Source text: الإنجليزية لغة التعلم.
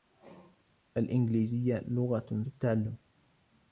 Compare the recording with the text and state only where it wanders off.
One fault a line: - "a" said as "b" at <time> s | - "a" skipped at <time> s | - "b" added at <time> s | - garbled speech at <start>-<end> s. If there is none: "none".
none